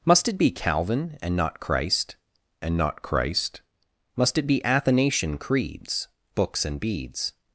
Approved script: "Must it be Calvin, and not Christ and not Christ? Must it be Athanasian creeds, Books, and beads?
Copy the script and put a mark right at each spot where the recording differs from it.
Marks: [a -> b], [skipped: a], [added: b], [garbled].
"Must it be Calvin, and not Christ and not Christ? Must it be Athanasian creeds, Books, and beads?